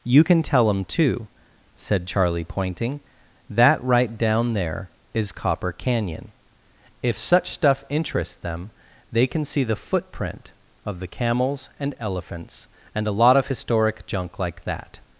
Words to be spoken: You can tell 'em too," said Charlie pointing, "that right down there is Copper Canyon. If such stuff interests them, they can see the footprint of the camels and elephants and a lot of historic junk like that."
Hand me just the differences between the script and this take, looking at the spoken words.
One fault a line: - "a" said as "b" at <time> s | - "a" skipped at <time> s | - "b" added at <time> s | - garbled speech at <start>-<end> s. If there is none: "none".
none